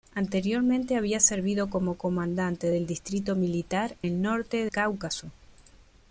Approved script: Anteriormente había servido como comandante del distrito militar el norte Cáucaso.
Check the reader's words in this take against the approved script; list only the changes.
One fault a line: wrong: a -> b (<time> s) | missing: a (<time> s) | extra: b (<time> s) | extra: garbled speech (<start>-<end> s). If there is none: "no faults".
no faults